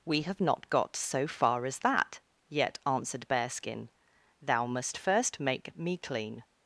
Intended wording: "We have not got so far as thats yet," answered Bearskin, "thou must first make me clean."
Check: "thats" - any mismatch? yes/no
yes